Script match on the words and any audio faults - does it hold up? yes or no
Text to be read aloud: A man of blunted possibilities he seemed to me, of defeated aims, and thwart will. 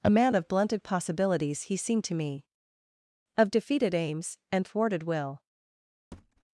no